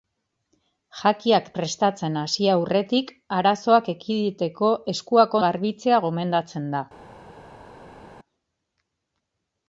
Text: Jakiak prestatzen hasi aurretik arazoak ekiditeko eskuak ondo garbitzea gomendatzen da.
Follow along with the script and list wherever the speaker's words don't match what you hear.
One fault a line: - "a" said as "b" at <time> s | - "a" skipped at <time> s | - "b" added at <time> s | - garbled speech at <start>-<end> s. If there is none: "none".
- "ondo" skipped at 5.4 s